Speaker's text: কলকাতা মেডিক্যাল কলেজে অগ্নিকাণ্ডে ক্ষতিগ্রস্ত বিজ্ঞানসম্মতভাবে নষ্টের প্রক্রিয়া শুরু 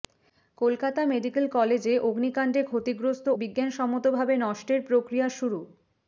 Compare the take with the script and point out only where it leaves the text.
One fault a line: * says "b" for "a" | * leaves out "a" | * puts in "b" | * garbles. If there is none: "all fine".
all fine